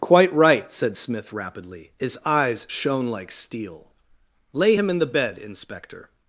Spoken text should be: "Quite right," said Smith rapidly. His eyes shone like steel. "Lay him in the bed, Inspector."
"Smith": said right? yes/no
yes